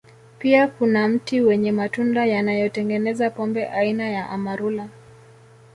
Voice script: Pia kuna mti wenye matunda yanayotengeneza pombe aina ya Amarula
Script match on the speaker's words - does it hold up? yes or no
yes